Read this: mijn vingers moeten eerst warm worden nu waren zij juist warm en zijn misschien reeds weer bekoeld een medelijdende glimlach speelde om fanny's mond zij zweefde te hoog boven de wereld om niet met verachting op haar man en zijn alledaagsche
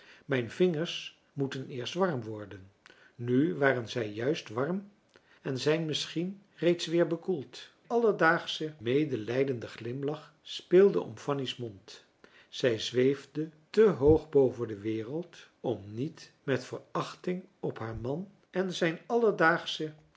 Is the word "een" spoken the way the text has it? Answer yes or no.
no